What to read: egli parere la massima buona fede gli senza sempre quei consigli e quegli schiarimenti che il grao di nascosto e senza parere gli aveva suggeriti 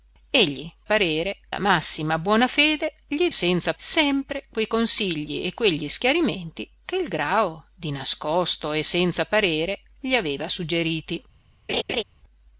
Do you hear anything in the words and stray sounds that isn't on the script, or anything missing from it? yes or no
yes